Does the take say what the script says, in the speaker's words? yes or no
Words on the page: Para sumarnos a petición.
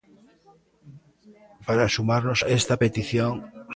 no